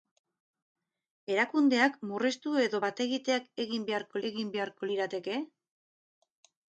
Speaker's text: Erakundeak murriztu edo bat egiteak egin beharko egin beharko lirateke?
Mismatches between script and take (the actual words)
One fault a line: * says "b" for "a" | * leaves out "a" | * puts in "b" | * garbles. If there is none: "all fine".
all fine